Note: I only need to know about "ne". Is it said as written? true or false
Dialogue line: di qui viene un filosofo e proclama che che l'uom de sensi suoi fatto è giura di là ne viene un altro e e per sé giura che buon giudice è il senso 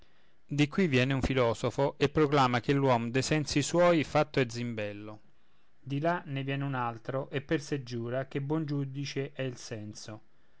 true